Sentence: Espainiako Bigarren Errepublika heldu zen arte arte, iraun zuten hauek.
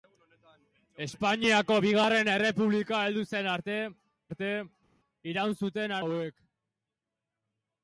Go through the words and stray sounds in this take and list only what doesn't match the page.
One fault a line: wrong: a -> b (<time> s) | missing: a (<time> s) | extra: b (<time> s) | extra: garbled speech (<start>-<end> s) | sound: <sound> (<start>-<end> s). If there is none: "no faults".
no faults